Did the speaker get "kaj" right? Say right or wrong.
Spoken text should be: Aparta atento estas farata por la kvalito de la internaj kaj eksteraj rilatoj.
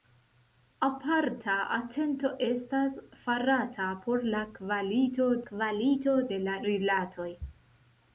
wrong